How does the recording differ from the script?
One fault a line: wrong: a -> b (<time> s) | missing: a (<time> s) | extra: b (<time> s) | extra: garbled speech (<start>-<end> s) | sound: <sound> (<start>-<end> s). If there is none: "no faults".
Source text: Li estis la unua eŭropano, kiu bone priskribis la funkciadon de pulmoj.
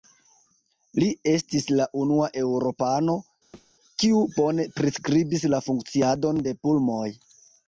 sound: thud (3.5-3.7 s)